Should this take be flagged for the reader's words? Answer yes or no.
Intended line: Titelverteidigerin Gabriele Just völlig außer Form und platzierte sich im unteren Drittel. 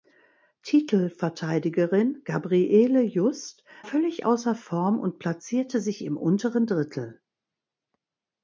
no